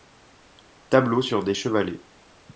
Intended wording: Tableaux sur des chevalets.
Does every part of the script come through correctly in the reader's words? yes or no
yes